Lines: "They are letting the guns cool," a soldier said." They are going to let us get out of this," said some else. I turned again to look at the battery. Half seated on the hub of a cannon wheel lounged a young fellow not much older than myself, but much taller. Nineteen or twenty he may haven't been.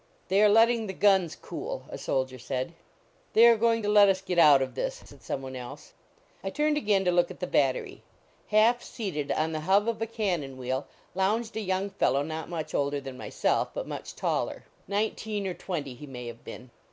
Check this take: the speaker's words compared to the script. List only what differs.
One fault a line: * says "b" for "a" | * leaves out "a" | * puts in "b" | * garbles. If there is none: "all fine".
* puts in "one"
* says "have" for "haven't"